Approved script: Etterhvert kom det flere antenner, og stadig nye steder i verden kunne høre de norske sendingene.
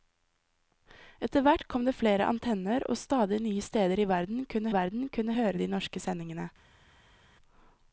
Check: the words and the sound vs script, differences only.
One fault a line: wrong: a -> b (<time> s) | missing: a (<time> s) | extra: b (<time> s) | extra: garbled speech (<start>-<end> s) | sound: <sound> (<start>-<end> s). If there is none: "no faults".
extra: verden kunne (4.7 s)